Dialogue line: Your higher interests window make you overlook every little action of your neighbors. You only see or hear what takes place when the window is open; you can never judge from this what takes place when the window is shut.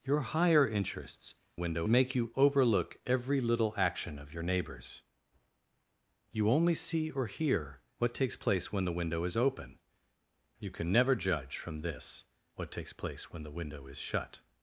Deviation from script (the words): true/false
false